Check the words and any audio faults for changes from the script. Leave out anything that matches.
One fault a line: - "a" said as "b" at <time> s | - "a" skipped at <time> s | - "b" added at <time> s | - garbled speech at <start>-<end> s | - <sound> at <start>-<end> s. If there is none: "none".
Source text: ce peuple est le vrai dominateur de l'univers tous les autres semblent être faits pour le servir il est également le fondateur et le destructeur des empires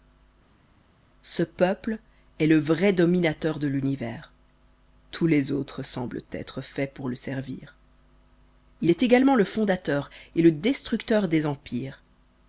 none